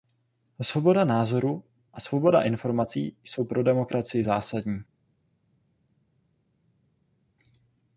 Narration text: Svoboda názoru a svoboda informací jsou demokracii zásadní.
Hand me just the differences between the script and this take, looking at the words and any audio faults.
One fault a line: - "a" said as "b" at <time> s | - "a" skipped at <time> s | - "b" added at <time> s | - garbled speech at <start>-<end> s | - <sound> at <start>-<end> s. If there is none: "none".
- "pro" added at 3.4 s